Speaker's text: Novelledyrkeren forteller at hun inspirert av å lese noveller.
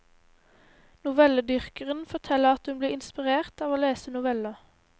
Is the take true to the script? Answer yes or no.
no